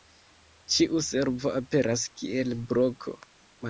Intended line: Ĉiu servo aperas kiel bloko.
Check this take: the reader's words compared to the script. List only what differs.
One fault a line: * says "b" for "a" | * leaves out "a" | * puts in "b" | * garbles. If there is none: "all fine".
all fine